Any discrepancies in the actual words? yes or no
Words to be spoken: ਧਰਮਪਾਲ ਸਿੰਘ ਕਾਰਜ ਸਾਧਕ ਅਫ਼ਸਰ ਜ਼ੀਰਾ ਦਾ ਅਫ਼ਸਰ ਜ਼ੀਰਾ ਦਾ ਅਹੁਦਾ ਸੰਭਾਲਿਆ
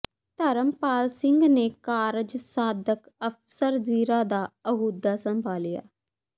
yes